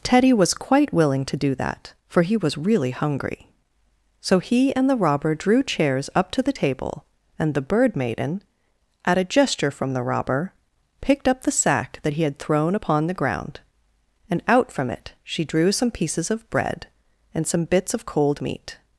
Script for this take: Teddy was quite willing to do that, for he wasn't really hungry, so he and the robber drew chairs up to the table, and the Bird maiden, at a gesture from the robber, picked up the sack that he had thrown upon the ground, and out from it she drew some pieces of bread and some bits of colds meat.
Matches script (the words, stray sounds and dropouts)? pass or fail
fail